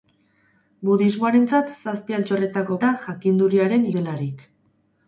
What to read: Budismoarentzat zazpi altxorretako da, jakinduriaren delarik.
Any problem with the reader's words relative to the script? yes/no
no